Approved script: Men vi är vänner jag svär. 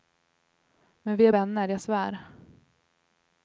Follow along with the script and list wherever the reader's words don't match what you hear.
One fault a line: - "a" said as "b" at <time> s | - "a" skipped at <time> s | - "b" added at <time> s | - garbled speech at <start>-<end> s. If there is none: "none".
none